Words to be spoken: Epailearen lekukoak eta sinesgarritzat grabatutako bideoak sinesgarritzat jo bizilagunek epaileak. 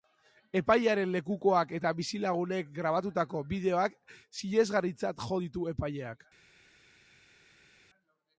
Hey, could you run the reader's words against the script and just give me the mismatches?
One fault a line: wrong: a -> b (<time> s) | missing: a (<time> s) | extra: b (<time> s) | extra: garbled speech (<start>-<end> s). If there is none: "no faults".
wrong: sinesgarritzat -> bizilagunek (2.0 s)
wrong: bizilagunek -> ditu (5.4 s)